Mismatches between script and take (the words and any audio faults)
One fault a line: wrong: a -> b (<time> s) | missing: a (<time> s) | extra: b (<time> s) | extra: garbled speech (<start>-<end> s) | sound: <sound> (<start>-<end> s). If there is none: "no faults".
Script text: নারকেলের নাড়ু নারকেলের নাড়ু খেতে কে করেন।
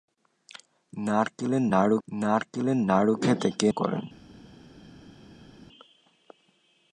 no faults